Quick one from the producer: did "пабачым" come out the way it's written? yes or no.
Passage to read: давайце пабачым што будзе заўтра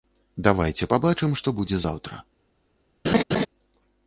yes